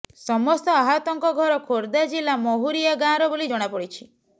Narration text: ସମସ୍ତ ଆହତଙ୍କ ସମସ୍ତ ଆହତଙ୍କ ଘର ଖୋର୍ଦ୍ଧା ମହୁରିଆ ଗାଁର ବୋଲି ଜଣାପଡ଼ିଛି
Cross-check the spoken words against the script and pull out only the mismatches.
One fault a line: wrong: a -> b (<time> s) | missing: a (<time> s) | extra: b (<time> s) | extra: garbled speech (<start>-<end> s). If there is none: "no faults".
missing: ସମସ୍ତ ଆହତଙ୍କ (1.3 s)
extra: ଜିଲ୍ଲା (2.1 s)